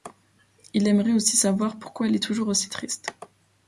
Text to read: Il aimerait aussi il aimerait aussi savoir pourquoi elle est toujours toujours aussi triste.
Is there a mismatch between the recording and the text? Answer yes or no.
yes